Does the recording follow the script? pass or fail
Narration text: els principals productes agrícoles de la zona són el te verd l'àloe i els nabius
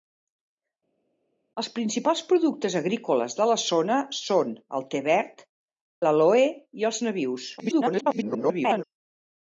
fail